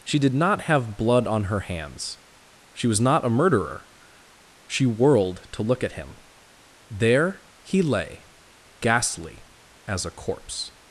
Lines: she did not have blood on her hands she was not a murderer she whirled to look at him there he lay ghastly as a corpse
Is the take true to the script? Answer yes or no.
yes